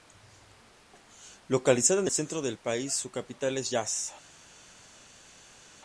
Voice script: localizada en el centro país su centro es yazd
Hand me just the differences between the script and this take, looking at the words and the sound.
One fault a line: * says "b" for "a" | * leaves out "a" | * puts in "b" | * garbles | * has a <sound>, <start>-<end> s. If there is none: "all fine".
* puts in "del"
* says "capital" for "centro"